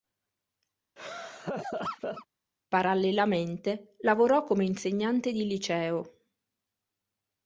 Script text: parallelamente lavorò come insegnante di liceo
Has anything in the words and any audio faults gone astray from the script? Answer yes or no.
yes